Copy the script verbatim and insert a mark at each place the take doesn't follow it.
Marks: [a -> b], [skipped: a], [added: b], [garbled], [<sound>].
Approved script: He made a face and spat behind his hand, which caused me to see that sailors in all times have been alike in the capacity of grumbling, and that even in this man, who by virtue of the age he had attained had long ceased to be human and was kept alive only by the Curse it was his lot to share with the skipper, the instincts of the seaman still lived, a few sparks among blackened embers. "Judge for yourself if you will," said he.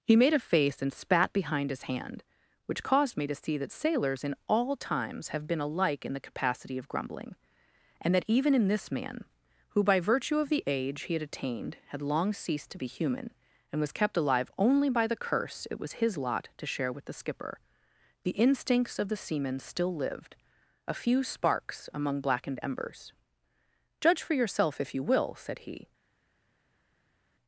He made a face and spat behind his hand, which caused me to see that sailors in all times have been alike in the capacity of grumbling, and that even in this man, who by virtue of the age he had attained had long ceased to be human and was kept alive only by the Curse it was his lot to share with the skipper, the instincts of the seaman still lived, a few sparks among blackened embers. "Judge for yourself if you will," said he.